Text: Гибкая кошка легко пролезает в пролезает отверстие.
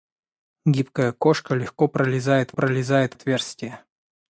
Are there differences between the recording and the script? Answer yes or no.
no